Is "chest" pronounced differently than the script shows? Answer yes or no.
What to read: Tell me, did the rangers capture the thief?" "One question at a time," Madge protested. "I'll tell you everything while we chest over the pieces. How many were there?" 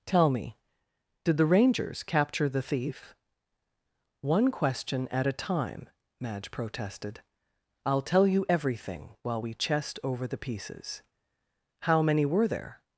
no